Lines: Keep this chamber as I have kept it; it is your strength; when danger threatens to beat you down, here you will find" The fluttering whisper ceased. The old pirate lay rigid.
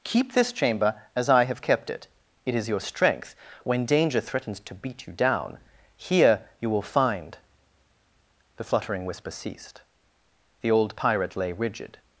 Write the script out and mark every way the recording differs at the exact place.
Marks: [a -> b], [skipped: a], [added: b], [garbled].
Keep this chamber as I have kept it; it is your strength; when danger threatens to beat you down, here you will find" The fluttering whisper ceased. The old pirate lay rigid.